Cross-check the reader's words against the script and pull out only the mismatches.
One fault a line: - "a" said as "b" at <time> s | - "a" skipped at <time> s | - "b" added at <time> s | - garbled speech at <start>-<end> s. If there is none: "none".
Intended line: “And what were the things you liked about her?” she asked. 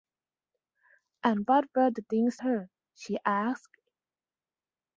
- "you liked about" skipped at 2.4 s